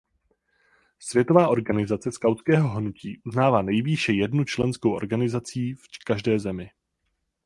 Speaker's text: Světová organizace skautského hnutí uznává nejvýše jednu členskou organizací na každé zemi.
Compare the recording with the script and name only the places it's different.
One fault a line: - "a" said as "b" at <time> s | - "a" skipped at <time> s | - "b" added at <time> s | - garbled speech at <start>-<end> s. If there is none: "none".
- "na" said as "v" at 5.7 s